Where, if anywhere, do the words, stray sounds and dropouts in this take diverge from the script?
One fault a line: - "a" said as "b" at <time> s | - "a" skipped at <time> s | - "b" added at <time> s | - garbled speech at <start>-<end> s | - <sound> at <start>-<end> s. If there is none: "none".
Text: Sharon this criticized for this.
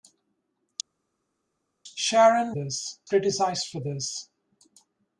none